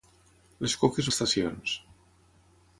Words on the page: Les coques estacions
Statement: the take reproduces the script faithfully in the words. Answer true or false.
true